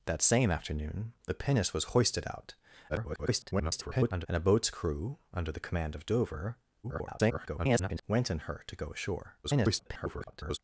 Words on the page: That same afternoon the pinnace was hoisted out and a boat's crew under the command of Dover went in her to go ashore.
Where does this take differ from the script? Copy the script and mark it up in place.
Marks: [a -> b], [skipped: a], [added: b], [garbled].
That same afternoon the pinnace was hoisted out [garbled] and a boat's crew under the command of Dover [garbled] went in her to go ashore. [garbled]